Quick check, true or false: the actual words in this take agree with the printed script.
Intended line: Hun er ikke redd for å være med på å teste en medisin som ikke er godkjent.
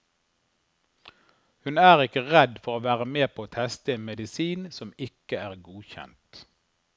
true